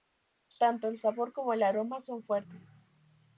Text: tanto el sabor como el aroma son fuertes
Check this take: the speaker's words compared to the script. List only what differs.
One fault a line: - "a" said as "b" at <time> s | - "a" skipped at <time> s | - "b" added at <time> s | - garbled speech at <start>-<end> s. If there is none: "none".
none